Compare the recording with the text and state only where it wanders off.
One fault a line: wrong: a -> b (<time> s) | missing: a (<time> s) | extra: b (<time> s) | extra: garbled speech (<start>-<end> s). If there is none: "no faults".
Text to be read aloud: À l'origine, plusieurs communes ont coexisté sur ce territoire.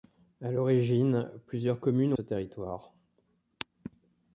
missing: ont coexisté sur (2.1 s)